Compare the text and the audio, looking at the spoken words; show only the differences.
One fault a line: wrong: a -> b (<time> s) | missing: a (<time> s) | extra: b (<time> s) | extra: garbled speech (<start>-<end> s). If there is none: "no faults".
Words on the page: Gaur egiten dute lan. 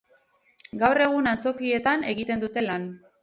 extra: egun antzokietan (1.1 s)